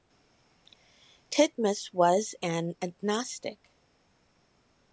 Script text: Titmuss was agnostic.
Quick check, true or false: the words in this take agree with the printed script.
false